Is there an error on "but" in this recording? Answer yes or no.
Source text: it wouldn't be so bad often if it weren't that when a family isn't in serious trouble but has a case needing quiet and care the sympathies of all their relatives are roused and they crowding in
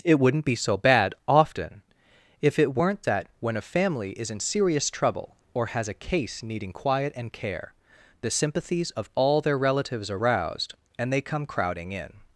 yes